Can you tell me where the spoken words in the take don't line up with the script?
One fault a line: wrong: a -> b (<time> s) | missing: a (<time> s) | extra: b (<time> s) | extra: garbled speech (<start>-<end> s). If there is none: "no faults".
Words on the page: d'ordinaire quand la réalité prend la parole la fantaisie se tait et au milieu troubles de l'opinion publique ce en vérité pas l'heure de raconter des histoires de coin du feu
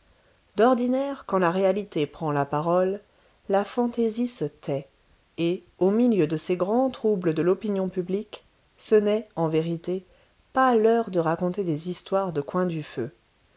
extra: de ces grands (6.2 s)
extra: n'est (9.0 s)